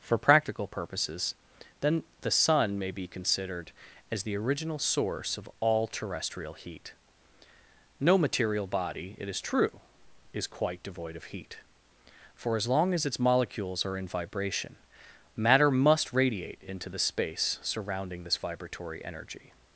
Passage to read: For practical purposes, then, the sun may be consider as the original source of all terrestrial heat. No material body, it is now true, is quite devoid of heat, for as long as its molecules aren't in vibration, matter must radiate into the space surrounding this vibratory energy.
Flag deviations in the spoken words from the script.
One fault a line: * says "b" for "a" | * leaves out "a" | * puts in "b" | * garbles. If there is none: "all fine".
* says "considered" for "consider"
* leaves out "now"
* says "are" for "aren't"